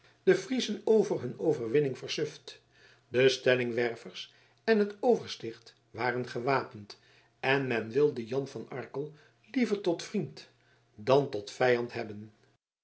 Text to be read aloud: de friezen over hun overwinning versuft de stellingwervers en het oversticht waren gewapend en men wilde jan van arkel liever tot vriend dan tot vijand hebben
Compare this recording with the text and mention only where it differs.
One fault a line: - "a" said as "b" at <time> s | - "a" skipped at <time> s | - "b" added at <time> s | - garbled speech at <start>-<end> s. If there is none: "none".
none